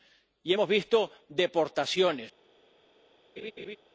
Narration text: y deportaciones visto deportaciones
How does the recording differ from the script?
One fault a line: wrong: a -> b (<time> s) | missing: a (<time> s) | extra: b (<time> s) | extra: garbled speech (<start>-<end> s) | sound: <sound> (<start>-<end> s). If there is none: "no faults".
wrong: deportaciones -> hemos (0.5 s)
sound: laugh (3.4-3.8 s)